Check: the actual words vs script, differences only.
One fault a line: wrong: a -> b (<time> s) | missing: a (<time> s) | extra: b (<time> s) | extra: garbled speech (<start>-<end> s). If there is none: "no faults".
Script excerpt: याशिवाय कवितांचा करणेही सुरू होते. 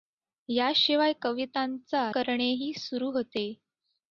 no faults